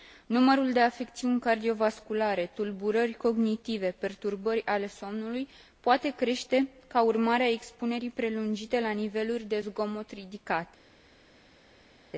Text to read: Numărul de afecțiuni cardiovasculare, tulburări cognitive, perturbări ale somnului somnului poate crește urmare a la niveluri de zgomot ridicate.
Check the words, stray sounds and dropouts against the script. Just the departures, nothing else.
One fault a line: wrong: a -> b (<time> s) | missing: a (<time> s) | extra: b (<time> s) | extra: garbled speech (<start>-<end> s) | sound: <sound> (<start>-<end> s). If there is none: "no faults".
missing: somnului (5.5 s)
extra: ca (6.9 s)
extra: expunerii prelungite (7.5 s)